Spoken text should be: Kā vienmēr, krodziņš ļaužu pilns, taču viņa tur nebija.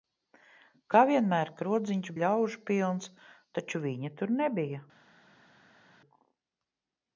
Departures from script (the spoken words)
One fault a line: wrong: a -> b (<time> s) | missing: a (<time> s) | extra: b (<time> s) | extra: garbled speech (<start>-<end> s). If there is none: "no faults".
no faults